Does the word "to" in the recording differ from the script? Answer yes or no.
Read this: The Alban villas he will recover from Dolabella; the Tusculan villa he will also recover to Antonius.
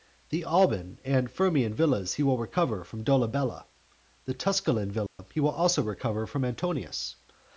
yes